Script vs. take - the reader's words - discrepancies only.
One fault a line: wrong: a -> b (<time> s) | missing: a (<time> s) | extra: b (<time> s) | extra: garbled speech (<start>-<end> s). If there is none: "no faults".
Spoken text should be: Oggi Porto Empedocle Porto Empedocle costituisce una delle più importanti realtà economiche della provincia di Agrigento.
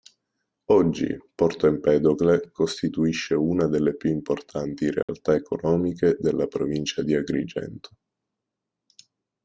missing: Porto Empedocle (2.5 s)